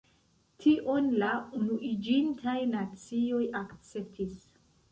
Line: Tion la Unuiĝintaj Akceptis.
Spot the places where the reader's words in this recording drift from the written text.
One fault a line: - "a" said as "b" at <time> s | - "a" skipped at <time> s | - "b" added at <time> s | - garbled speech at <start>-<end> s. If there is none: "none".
- "Nacioj" added at 2.7 s